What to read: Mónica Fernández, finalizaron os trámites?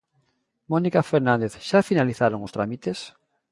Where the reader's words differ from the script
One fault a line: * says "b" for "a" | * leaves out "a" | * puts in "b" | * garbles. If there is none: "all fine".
* puts in "xa"